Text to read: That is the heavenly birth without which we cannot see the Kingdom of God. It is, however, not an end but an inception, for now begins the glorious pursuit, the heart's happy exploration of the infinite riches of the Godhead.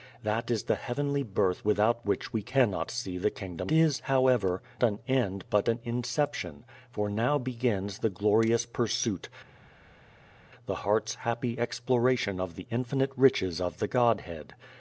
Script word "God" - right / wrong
wrong